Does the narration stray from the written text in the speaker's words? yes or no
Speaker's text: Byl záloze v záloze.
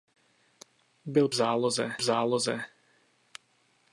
no